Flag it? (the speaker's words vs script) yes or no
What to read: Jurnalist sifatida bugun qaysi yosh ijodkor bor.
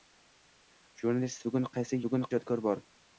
yes